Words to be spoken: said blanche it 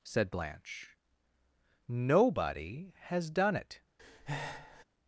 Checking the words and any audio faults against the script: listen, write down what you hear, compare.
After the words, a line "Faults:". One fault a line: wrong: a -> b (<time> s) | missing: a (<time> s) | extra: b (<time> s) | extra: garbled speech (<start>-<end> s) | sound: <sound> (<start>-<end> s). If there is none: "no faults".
said blanche nobody has done it
Faults:
extra: nobody has done (1.9 s)
sound: breath (4.0-4.8 s)